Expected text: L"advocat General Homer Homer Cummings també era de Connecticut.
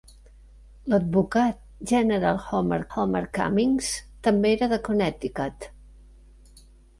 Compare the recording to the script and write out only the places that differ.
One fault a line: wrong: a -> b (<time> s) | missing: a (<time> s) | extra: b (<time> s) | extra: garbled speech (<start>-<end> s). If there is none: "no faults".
no faults